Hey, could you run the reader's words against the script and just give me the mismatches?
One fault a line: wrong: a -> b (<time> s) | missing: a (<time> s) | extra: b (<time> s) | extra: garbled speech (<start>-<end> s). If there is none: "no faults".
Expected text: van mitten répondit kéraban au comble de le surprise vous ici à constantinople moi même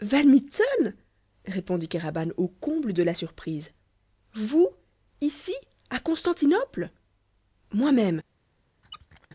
wrong: le -> la (3.0 s)